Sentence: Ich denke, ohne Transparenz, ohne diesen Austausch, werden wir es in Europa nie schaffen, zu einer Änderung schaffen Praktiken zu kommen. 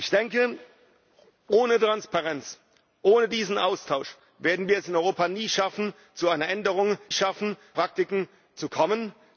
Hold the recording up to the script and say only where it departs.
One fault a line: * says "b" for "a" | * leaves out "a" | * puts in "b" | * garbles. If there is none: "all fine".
all fine